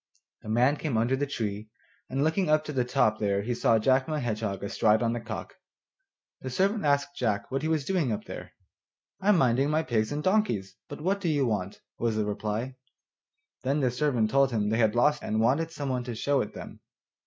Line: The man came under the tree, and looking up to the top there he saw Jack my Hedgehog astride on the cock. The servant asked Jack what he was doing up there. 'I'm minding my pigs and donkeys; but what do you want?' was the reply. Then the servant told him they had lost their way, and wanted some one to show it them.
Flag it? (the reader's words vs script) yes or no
yes